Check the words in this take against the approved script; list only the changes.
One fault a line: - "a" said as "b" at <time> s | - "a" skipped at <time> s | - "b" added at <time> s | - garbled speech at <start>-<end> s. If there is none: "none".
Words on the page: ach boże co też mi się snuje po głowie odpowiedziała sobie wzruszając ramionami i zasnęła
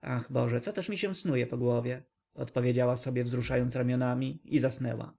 none